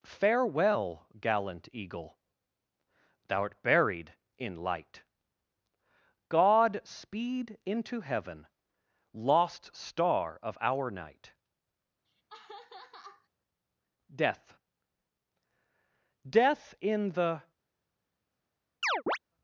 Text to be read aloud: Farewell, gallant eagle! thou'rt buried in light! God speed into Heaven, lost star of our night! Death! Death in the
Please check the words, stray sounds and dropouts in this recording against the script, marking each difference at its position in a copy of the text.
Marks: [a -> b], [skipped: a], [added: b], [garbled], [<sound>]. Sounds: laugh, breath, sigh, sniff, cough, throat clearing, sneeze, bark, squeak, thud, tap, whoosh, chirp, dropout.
Farewell, gallant eagle! thou'rt buried in light! God speed into Heaven, lost star of our night! [laugh] Death! Death in the [chirp]